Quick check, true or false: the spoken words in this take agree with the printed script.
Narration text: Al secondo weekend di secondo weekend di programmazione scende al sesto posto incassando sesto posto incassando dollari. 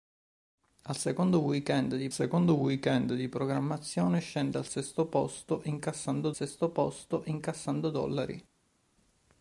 true